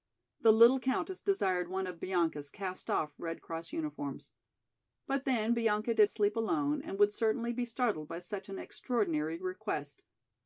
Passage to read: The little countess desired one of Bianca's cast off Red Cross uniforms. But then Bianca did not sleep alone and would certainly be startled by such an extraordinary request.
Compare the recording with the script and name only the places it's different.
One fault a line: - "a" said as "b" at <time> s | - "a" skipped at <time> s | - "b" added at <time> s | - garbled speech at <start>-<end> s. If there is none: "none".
- "not" skipped at 6.1 s